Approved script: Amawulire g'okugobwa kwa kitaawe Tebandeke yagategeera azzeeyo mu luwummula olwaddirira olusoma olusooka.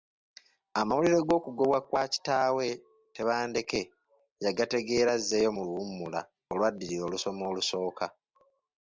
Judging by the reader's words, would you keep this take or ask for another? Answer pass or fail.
pass